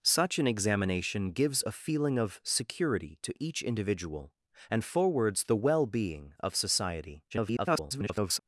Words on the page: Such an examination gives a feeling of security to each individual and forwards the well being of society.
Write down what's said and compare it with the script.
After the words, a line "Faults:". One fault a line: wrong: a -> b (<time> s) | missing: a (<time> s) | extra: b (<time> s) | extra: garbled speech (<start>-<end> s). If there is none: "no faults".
Such an examination gives a feeling of security to each individual and forwards the well being of society. [garbled]
Faults:
extra: garbled speech (7.3-8.4 s)